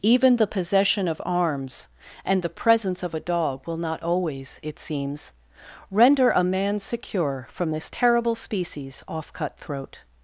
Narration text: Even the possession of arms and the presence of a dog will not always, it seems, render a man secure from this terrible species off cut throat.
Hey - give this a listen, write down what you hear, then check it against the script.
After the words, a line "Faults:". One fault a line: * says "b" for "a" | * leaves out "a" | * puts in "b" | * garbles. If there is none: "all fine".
Even the possession of arms and the presence of a dog will not always, it seems, render a man secure from this terrible species off cut throat.
Faults:
all fine